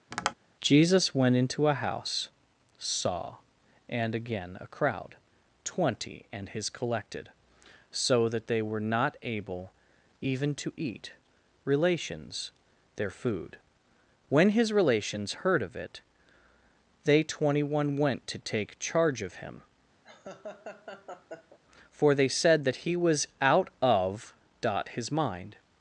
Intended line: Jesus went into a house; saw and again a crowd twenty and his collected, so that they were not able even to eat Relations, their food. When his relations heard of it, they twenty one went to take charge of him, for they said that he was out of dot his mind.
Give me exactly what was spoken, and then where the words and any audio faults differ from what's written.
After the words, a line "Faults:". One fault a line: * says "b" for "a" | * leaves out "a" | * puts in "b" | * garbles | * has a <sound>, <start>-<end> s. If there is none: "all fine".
Jesus went into a house; saw and again a crowd twenty and his collected, so that they were not able even to eat Relations, their food. When his relations heard of it, they twenty one went to take charge of him, for they said that he was out of dot his mind.
Faults:
* has a tap, 0.1-0.3 s
* has a laugh, 20.0-21.6 s